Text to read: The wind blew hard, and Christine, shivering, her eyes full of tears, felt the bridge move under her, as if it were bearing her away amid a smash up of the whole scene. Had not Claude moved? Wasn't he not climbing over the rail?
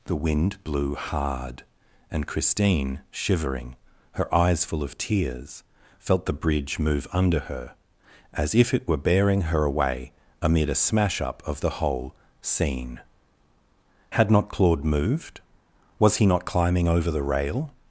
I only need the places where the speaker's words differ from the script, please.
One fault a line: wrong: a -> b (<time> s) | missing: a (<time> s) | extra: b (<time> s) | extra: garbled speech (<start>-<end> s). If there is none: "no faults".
wrong: Wasn't -> Was (16.0 s)